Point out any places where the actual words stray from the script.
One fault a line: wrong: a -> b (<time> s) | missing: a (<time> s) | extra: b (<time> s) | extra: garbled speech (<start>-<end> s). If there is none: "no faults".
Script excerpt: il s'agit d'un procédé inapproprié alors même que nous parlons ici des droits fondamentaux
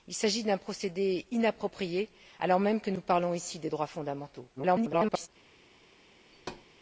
extra: garbled speech (4.6-5.3 s)